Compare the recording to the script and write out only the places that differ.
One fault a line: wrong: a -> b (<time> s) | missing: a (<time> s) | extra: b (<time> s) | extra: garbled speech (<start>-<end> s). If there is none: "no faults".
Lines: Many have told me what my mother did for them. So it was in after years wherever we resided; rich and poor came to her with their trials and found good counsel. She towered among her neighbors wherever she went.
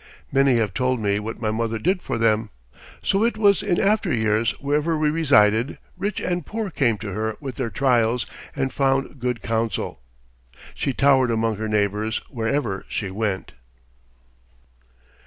no faults